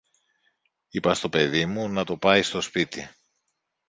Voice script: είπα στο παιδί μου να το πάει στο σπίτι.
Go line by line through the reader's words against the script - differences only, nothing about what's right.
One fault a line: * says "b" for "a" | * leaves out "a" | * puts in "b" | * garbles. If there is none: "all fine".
all fine